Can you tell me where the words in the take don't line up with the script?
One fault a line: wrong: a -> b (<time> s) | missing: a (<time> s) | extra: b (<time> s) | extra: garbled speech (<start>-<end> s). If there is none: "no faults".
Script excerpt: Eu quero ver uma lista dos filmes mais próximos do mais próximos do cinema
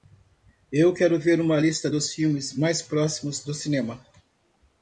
missing: mais próximos do (3.5 s)